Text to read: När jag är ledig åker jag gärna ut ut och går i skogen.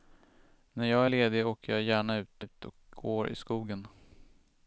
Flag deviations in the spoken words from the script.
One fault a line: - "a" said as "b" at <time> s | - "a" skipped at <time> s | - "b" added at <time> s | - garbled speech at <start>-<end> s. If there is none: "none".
none